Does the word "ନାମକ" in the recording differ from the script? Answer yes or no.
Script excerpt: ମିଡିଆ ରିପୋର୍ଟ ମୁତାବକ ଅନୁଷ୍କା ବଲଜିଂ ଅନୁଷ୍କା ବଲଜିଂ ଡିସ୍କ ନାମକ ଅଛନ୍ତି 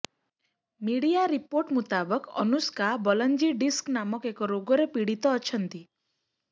yes